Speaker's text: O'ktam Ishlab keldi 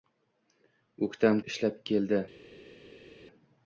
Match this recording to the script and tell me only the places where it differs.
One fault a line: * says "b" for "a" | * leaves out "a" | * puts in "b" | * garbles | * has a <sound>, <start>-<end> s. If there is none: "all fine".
all fine